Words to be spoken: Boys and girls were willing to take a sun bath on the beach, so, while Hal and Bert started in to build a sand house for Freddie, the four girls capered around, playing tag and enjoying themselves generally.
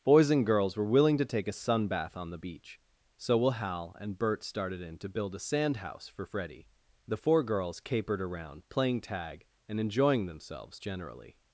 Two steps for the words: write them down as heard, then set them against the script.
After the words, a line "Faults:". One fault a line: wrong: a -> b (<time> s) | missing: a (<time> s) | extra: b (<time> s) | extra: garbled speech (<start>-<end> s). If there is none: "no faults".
Boys and girls were willing to take a sun bath on the beach, so, will Hal and Bert started in to build a sand house for Freddie, the four girls capered around, playing tag and enjoying themselves generally.
Faults:
wrong: while -> will (3.4 s)